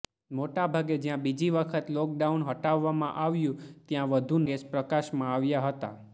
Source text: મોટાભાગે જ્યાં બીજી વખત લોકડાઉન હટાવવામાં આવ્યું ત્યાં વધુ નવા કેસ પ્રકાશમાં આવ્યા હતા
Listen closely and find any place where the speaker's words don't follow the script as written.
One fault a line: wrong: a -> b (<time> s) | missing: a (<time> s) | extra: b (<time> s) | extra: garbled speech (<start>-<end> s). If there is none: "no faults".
missing: નવા (4.4 s)